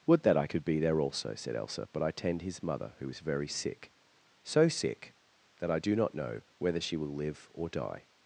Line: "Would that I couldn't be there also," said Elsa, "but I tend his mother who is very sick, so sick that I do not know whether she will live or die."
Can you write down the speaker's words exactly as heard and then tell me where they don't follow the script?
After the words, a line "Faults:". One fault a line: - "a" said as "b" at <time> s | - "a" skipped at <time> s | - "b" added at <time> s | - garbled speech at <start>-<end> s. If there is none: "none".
"Would that I could be there also," said Elsa, "but I tend his mother who is very sick, so sick that I do not know whether she will live or die."
Faults:
- "couldn't" said as "could" at 0.4 s